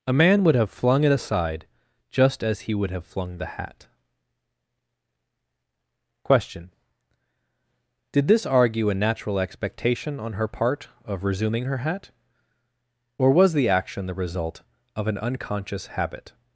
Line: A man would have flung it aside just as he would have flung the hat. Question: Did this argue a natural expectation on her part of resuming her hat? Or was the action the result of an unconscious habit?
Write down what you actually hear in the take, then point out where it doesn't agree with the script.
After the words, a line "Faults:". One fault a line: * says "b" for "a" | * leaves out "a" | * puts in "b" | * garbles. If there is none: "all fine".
A man would have flung it aside just as he would have flung the hat. Question: Did this argue a natural expectation on her part of resuming her hat? Or was the action the result of an unconscious habit?
Faults:
all fine